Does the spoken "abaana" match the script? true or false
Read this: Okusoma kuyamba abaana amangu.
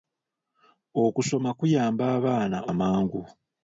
true